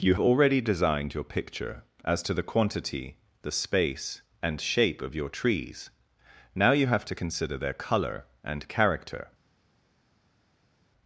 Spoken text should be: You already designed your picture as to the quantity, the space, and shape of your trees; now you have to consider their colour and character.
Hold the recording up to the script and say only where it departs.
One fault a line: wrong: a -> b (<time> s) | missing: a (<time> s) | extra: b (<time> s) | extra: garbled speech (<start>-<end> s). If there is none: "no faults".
no faults